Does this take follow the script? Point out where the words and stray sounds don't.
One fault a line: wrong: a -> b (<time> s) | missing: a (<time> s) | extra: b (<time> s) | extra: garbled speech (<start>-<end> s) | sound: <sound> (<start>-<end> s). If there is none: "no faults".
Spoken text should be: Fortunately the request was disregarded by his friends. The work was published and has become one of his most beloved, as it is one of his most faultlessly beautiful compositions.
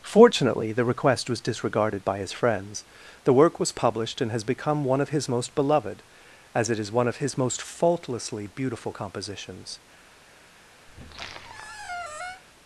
sound: squeak (10.9-12.4 s)